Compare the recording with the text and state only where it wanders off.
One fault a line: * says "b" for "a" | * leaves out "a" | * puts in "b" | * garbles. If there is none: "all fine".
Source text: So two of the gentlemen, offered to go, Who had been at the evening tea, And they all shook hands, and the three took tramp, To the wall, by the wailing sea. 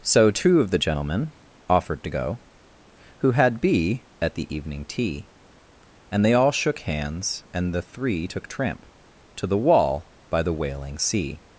* says "be" for "been"